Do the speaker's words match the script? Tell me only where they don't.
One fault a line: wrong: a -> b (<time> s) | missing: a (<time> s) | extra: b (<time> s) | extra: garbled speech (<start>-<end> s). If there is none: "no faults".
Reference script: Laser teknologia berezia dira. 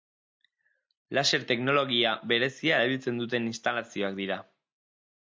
extra: erabiltzen duten instalazioak (2.8 s)